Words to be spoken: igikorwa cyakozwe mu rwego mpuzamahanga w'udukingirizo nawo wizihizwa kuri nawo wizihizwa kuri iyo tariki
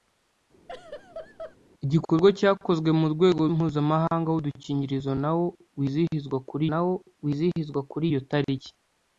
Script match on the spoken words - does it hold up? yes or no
yes